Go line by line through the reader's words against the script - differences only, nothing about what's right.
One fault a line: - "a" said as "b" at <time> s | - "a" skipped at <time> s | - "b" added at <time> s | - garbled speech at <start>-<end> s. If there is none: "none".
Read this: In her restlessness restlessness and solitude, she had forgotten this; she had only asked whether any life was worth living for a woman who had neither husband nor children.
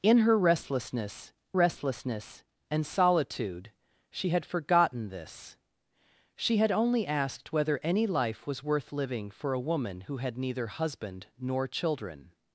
none